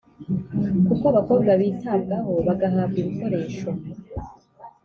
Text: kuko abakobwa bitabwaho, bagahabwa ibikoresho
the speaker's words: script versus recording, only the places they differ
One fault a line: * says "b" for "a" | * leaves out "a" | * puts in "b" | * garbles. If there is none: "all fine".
all fine